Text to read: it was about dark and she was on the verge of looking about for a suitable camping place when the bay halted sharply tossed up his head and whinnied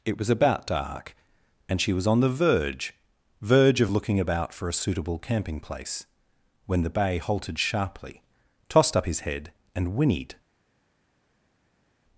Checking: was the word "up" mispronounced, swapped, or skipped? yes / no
no